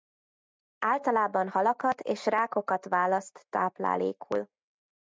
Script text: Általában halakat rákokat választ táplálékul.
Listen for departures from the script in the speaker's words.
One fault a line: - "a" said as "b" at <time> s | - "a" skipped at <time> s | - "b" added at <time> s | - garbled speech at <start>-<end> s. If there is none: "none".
- "és" added at 2.0 s